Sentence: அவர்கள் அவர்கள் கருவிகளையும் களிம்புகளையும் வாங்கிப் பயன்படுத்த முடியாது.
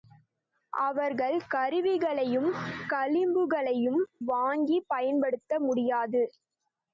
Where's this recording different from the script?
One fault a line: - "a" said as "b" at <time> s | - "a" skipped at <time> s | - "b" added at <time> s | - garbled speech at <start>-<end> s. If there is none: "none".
- "அவர்கள்" skipped at 1.4 s